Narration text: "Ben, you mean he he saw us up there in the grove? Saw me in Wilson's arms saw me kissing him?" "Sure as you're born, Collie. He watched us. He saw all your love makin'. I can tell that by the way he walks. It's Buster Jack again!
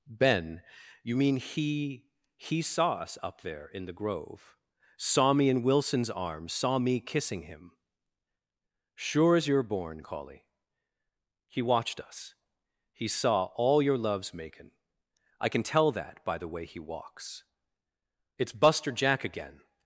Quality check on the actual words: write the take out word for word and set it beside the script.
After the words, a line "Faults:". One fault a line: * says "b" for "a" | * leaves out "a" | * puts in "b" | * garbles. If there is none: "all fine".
"Ben, you mean he he saw us up there in the grove? Saw me in Wilson's arms saw me kissing him?" "Sure as you're born, Collie. He watched us. He saw all your loves makin'. I can tell that by the way he walks. It's Buster Jack again!
Faults:
* says "loves" for "love"